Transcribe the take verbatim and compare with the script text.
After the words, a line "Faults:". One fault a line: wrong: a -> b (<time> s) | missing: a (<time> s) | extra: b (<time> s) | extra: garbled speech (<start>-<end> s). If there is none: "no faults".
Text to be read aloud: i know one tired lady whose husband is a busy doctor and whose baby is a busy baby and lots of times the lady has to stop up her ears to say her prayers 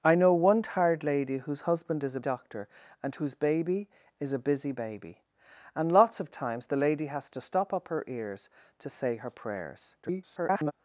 i know one tired lady whose husband is a doctor and whose baby is a busy baby and lots of times the lady has to stop up her ears to say her prayers [garbled]
Faults:
missing: busy (2.2 s)
extra: garbled speech (10.0-10.7 s)